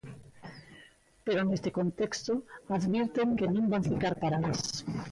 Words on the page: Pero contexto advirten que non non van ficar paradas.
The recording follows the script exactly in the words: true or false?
false